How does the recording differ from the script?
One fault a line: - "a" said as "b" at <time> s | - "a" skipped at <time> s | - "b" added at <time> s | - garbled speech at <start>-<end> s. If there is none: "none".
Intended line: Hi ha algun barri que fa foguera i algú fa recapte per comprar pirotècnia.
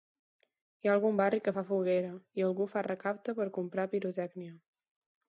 none